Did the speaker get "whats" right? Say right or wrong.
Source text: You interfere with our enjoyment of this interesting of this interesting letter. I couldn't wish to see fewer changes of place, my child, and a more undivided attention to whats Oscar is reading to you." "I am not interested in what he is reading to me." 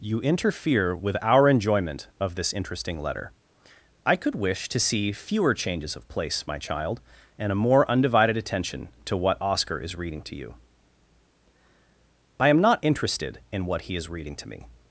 wrong